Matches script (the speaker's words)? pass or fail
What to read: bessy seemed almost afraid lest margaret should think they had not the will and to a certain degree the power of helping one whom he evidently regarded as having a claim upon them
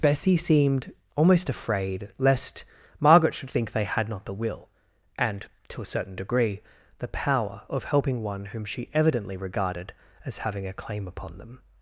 fail